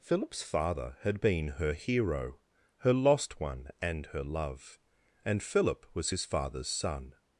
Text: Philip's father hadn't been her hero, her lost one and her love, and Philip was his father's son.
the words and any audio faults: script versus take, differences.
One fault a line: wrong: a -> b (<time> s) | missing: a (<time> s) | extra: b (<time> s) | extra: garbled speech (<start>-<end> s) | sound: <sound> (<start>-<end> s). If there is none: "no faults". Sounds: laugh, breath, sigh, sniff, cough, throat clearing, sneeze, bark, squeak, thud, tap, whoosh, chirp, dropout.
wrong: hadn't -> had (1.0 s)